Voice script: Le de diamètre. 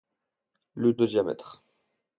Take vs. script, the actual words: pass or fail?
pass